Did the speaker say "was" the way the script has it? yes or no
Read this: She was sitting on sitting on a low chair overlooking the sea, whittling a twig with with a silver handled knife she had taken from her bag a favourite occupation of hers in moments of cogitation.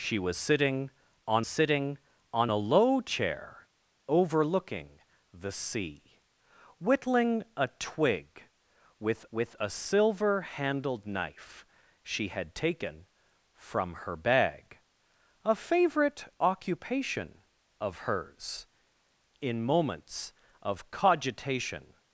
yes